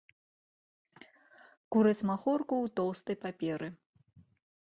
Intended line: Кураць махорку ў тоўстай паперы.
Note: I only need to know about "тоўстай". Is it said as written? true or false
true